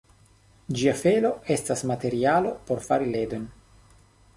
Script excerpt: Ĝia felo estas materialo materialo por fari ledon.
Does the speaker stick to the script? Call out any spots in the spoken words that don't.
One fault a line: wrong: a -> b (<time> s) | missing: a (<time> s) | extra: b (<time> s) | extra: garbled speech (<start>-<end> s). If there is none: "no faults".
missing: materialo (2.5 s)